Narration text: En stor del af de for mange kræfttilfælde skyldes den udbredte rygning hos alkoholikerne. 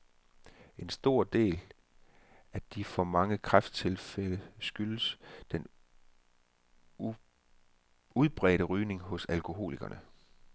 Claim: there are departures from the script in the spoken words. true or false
false